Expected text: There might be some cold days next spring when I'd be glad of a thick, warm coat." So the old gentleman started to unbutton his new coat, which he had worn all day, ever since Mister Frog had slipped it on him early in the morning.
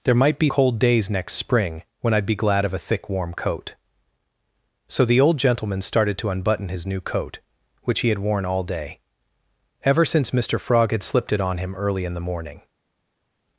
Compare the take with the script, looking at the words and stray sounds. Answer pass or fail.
fail